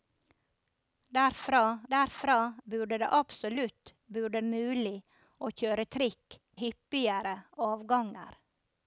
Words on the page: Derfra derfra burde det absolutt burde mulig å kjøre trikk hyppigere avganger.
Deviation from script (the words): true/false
false